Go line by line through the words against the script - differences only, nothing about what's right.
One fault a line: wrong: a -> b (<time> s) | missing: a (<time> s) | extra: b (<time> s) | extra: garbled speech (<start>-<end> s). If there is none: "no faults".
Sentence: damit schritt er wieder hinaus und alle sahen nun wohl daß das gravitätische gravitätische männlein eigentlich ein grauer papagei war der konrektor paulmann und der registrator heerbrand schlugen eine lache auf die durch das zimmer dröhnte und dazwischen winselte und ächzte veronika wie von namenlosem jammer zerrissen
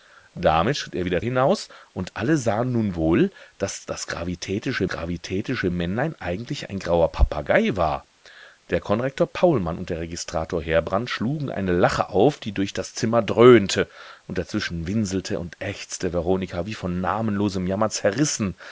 no faults